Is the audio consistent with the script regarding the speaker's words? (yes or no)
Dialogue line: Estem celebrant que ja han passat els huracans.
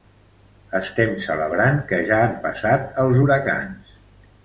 yes